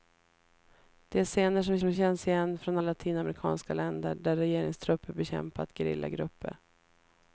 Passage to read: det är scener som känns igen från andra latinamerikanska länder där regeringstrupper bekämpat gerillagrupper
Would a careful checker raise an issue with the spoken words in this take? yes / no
yes